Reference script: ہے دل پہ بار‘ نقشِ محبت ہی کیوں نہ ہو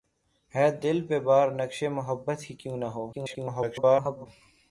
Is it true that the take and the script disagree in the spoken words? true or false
true